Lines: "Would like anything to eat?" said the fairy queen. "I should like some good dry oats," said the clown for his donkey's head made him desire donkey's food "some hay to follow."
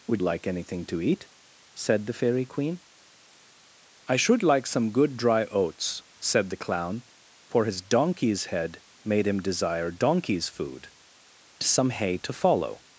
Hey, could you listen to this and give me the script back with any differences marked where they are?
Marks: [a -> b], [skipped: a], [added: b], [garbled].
"Would like anything to eat?" said the fairy queen. "I should like some good dry oats," said the clown for his donkey's head made him desire donkey's food "some hay to follow."